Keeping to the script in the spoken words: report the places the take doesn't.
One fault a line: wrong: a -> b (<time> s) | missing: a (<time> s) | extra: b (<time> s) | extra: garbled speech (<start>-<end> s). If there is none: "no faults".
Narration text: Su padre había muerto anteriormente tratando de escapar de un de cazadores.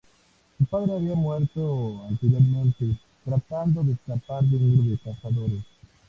no faults